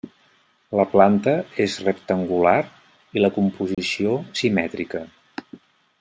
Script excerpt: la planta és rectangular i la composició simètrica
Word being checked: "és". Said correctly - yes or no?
yes